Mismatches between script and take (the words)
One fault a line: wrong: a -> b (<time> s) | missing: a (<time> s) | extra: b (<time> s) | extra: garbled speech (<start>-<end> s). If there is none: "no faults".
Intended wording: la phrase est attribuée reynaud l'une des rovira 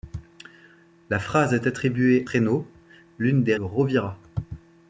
no faults